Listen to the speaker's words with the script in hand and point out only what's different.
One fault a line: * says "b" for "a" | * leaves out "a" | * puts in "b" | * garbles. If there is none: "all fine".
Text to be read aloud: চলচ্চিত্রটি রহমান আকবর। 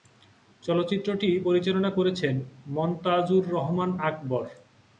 * puts in "পরিচালনা করেছেন মনতাজুর"